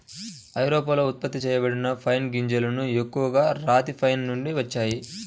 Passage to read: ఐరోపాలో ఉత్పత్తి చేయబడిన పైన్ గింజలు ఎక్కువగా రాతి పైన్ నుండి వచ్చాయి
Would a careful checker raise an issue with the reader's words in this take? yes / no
no